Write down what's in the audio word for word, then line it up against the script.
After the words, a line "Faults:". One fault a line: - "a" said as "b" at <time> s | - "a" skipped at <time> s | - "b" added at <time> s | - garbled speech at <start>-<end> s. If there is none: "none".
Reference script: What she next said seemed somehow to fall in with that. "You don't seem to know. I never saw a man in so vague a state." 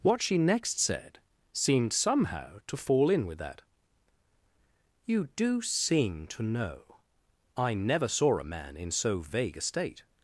What she next said seemed somehow to fall in with that. "You do seem to know. I never saw a man in so vague a state."
Faults:
- "don't" said as "do" at 5.4 s